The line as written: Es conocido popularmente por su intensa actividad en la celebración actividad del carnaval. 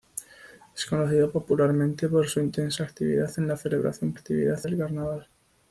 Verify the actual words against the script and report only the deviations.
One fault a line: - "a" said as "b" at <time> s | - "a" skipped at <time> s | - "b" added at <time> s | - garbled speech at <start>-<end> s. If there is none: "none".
none